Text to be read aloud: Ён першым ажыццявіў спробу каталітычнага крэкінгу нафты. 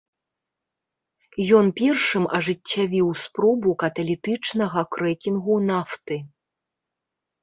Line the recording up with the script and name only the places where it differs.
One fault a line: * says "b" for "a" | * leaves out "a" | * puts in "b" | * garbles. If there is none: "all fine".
all fine